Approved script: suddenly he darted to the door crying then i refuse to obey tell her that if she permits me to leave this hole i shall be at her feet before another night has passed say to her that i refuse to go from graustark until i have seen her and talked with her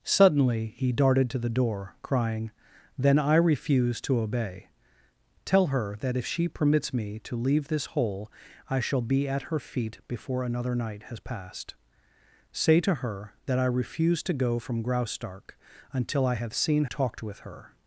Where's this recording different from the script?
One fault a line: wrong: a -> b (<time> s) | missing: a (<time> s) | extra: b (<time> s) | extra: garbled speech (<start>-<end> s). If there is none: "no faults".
missing: her and (16.8 s)